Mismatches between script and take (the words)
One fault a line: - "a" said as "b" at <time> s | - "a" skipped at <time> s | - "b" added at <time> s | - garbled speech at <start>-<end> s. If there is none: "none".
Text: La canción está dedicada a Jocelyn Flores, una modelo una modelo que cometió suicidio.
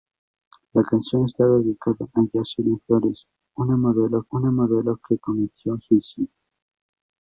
none